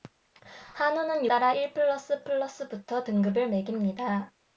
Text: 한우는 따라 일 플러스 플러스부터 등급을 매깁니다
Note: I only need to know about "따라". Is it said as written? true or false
true